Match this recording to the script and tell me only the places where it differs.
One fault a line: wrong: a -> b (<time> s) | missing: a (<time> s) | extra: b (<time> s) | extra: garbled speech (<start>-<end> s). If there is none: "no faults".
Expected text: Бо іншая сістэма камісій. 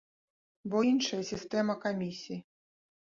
no faults